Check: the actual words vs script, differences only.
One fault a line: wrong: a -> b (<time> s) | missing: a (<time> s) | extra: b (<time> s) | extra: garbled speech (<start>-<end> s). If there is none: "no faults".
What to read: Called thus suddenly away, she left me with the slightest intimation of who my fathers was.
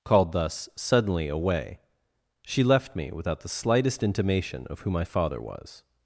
wrong: with -> without (3.1 s)
wrong: fathers -> father (5.0 s)